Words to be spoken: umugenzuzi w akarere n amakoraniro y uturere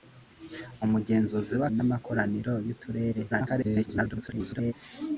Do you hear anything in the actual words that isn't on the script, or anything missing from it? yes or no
yes